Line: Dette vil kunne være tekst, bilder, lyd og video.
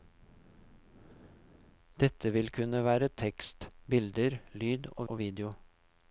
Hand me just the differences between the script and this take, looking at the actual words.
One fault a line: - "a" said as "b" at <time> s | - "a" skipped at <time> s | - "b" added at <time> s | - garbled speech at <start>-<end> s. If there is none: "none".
- "og" added at 5.1 s